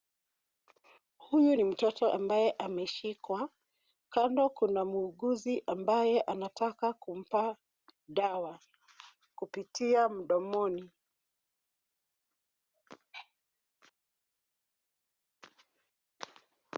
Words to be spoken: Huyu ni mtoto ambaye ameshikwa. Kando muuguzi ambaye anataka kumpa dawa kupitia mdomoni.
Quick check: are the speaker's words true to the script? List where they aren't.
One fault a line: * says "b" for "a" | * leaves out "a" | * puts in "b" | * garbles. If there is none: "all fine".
* puts in "kuna"